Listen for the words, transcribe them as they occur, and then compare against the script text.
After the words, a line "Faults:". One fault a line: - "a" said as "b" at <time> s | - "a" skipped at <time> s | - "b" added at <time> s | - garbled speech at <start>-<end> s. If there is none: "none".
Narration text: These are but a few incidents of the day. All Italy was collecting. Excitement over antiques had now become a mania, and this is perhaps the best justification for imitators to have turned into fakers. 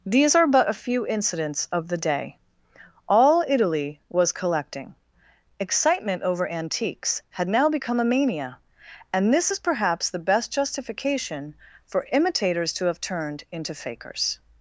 These are but a few incidents of the day. All Italy was collecting. Excitement over antiques had now become a mania, and this is perhaps the best justification for imitators to have turned into fakers.
Faults:
none